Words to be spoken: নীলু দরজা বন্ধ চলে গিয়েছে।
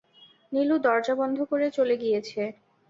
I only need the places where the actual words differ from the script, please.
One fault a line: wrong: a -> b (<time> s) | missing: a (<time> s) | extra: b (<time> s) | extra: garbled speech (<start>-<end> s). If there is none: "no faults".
extra: করে (1.5 s)